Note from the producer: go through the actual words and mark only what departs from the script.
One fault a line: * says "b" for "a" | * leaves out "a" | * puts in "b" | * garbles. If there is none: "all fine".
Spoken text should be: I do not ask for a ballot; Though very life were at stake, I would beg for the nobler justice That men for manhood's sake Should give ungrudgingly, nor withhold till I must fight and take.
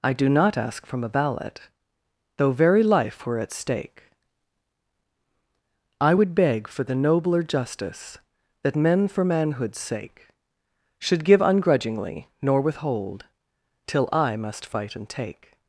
* says "from" for "for"